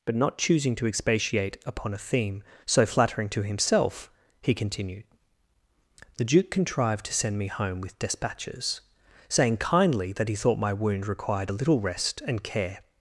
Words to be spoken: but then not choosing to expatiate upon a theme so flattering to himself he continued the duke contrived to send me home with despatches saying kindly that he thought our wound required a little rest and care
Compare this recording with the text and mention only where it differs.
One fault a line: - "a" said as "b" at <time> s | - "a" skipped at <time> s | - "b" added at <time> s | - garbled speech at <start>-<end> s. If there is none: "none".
- "then" skipped at 0.1 s
- "our" said as "my" at 10.6 s